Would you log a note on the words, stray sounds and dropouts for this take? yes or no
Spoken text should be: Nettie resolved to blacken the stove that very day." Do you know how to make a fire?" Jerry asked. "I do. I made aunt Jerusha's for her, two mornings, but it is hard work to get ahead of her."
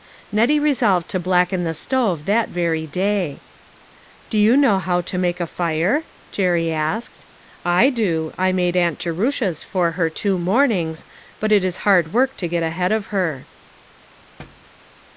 yes